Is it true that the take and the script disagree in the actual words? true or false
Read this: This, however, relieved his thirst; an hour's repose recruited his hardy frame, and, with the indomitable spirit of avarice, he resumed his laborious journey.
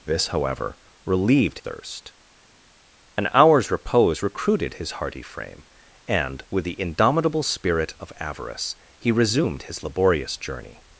true